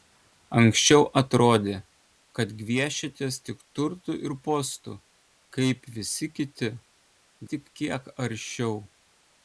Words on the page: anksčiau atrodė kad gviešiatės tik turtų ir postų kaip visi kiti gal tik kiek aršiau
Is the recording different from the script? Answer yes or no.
yes